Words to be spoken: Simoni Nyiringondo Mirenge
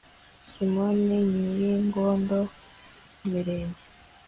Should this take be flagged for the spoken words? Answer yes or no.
no